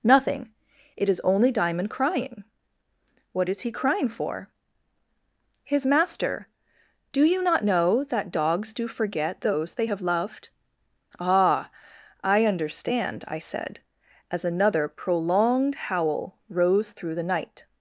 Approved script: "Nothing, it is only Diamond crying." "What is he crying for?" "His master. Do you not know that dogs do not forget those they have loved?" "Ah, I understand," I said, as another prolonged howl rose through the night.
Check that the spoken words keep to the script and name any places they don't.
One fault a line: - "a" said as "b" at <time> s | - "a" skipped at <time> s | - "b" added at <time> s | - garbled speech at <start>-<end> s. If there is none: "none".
- "not" skipped at 8.9 s